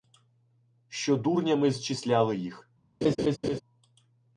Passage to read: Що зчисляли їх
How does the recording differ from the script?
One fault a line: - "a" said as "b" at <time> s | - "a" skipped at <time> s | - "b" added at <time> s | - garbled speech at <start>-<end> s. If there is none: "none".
- "дурнями" added at 1.1 s